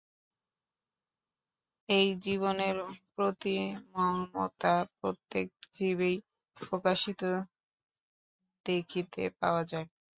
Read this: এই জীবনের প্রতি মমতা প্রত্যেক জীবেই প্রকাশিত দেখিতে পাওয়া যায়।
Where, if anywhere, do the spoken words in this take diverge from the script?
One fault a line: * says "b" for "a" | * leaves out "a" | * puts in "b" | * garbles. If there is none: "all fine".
all fine